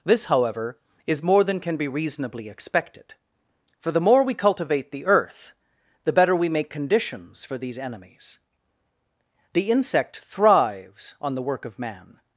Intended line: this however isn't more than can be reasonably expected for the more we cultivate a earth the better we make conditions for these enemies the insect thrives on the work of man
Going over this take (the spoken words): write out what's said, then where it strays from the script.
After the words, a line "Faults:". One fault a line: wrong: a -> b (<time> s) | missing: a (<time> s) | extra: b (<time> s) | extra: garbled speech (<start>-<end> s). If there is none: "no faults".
this however is more than can be reasonably expected for the more we cultivate the earth the better we make conditions for these enemies the insect thrives on the work of man
Faults:
wrong: isn't -> is (1.1 s)
wrong: a -> the (4.9 s)